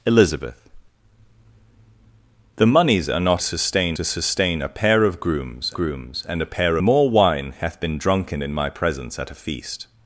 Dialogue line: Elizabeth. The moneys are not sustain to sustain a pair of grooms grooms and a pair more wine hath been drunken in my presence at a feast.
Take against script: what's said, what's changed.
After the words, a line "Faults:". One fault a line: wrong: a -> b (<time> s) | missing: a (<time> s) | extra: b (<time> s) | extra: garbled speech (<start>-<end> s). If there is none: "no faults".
Elizabeth. The moneys are not sustain to sustain a pair of grooms grooms and a pair more wine hath been drunken in my presence at a feast.
Faults:
no faults